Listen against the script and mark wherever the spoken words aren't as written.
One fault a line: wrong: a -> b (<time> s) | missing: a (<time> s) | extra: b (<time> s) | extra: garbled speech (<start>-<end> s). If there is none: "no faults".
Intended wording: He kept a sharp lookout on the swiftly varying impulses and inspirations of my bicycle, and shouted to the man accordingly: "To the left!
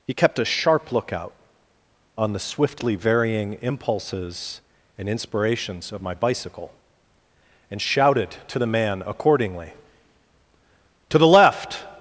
no faults